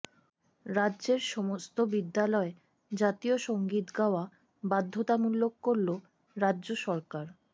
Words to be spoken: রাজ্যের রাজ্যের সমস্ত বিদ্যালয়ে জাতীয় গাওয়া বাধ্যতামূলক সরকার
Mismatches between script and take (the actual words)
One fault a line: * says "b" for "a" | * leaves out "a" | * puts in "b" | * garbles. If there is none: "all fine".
* leaves out "রাজ্যের"
* puts in "সঙ্গীত"
* puts in "করল রাজ্য"